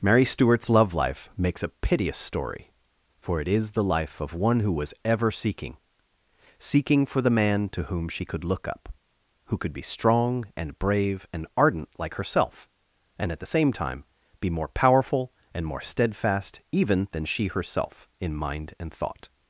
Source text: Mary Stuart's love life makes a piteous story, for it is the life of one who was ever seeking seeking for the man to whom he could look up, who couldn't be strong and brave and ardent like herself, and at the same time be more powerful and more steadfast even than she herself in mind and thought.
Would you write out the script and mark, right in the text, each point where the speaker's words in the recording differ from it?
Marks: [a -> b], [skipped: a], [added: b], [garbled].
Mary Stuart's love life makes a piteous story, for it is the life of one who was ever seeking seeking for the man to whom [he -> she] could look up, who [couldn't -> could] be strong and brave and ardent like herself, and at the same time be more powerful and more steadfast even than she herself in mind and thought.